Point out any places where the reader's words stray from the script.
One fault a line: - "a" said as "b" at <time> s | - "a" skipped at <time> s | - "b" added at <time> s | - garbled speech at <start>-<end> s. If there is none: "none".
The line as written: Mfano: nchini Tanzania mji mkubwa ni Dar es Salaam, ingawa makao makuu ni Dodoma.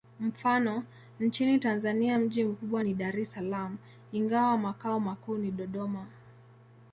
none